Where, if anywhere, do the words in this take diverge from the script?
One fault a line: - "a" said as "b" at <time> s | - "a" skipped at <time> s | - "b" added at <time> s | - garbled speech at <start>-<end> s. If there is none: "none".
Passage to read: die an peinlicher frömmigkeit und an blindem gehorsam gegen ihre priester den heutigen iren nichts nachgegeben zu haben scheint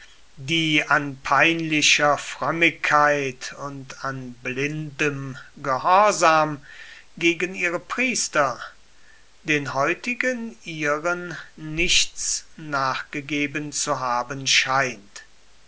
none